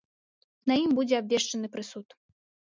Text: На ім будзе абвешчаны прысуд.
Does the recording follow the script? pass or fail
pass